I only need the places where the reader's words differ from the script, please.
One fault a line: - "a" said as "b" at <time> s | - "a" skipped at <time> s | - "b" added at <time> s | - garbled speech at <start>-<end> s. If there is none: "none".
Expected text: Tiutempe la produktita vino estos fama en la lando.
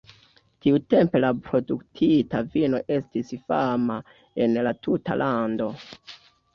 - "estos" said as "estis" at 3.0 s
- "tuta" added at 4.9 s